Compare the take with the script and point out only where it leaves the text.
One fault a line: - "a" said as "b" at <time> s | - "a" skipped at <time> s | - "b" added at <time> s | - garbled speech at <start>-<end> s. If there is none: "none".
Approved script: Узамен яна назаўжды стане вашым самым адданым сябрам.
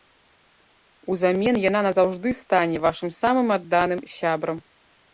none